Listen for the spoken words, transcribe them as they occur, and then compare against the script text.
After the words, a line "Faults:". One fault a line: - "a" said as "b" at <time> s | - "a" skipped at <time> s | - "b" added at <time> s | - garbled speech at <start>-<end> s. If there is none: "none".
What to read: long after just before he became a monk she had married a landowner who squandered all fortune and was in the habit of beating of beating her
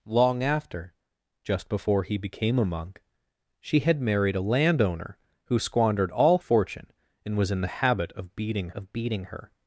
long after just before he became a monk she had married a landowner who squandered all fortune and was in the habit of beating of beating her
Faults:
none